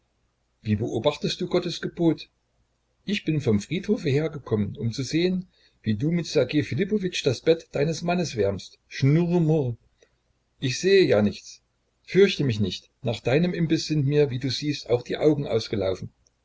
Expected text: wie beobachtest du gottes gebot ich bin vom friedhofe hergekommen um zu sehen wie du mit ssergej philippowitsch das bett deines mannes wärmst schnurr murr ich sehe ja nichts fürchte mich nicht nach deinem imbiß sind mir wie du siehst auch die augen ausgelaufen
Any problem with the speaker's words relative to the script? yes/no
no